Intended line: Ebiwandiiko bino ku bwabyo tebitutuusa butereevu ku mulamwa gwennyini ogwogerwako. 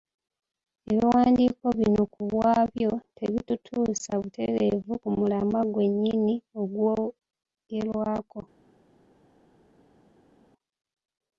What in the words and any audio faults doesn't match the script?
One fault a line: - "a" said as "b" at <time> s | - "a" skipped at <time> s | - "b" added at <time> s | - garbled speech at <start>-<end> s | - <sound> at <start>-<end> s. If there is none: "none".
none